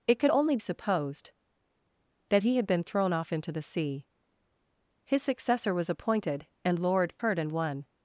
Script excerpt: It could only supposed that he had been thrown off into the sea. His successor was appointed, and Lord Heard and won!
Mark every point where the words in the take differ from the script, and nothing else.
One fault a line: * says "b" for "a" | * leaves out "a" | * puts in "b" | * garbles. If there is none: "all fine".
all fine